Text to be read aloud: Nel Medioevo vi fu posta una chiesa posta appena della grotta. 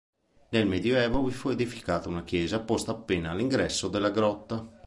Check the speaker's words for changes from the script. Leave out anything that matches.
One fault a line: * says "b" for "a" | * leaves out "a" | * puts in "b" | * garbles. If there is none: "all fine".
* says "edificata" for "posta"
* puts in "all'ingresso"